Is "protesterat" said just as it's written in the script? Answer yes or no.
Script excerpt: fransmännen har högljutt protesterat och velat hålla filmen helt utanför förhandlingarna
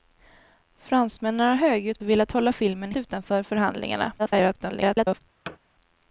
no